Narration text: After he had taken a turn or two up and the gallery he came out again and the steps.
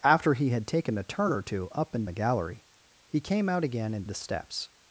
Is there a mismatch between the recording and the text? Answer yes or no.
no